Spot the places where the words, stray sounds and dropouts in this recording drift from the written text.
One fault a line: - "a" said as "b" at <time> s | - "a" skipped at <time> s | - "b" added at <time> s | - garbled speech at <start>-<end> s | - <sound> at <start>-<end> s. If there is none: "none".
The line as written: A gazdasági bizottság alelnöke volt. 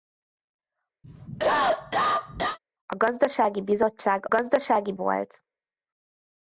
- cough at 1.0-2.6 s
- "alelnöke" said as "gazdasági" at 4.3 s